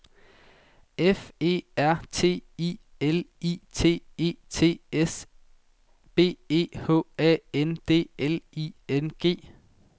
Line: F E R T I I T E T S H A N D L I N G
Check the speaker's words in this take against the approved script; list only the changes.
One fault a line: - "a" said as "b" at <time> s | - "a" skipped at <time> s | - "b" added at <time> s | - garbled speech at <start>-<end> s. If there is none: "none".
- "L" added at 3.0 s
- "B E" added at 6.2 s